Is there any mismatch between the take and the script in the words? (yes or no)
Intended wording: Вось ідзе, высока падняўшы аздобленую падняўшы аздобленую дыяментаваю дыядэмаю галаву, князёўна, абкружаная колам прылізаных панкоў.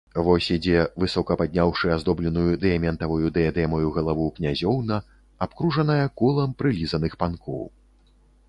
yes